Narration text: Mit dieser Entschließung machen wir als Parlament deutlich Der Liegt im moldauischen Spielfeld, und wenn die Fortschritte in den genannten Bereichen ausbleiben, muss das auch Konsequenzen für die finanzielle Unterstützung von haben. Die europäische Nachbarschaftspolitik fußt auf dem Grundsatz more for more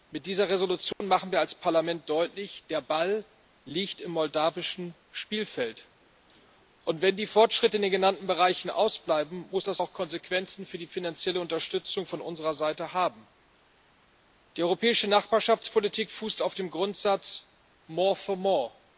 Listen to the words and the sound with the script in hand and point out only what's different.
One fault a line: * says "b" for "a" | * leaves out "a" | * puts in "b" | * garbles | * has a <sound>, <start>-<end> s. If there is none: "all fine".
* has a dropout, 0.9-1.0 s
* puts in "Ball"
* puts in "unserer Seite"